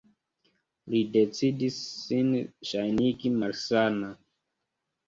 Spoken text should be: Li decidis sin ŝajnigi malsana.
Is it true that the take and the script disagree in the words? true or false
false